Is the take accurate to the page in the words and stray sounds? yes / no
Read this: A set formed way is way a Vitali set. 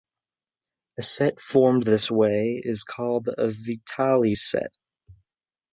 no